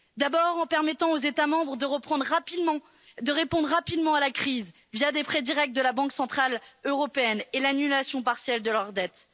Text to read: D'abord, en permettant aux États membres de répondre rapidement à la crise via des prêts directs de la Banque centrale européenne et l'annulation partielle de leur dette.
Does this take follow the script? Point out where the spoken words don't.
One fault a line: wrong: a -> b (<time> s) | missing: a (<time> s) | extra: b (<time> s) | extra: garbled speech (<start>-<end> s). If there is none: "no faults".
no faults